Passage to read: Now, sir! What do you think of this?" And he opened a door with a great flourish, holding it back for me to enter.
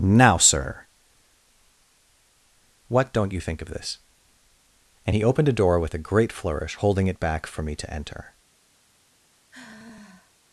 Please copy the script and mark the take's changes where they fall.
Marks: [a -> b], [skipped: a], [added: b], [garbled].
Now, sir! What [do -> don't] you think of this?" And he opened a door with a great flourish, holding it back for me to enter.